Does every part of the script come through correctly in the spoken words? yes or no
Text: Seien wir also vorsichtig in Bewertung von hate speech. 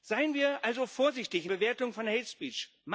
yes